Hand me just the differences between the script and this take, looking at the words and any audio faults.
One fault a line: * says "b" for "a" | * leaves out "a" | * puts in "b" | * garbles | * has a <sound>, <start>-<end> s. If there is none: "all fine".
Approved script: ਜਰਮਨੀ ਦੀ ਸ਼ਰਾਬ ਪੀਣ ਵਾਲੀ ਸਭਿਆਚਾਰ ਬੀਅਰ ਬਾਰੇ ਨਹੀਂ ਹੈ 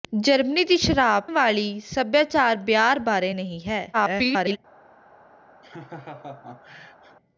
* leaves out "ਪੀਣ"
* garbles
* has a laugh, 5.6-7.2 s